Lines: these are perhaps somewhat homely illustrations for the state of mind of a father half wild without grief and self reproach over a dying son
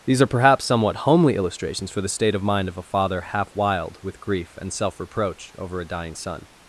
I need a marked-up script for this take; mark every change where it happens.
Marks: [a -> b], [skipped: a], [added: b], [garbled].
these are perhaps somewhat homely illustrations for the state of mind of a father half wild [without -> with] grief and self reproach over a dying son